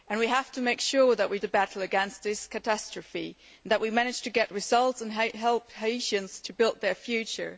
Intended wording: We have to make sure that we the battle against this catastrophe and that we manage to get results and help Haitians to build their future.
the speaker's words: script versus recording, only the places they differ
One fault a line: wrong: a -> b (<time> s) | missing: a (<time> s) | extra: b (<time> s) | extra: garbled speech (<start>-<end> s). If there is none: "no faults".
no faults